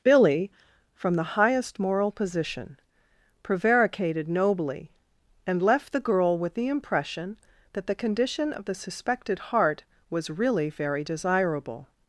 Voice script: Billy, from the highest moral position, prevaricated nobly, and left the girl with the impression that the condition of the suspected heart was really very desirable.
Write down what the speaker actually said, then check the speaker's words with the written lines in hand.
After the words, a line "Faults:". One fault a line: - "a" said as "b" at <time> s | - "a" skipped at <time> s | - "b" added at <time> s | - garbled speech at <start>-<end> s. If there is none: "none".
Billy, from the highest moral position, prevaricated nobly, and left the girl with the impression that the condition of the suspected heart was really very desirable.
Faults:
none